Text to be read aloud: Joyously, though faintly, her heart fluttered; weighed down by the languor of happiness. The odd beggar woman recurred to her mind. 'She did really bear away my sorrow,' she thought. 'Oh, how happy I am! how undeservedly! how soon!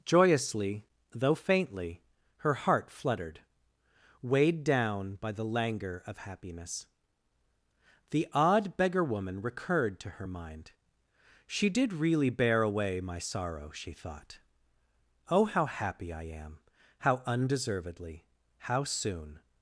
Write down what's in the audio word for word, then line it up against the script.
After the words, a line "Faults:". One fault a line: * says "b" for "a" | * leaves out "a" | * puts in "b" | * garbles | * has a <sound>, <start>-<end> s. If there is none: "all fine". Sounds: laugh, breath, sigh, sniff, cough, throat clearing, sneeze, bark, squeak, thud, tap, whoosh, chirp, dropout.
Joyously, though faintly, her heart fluttered; weighed down by the languor of happiness. The odd beggar woman recurred to her mind. 'She did really bear away my sorrow,' she thought. 'Oh, how happy I am! how undeservedly! how soon!
Faults:
all fine